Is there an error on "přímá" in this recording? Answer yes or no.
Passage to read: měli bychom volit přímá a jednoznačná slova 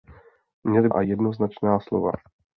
yes